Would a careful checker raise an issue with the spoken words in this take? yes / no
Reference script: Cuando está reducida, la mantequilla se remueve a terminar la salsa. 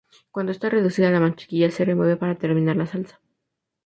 yes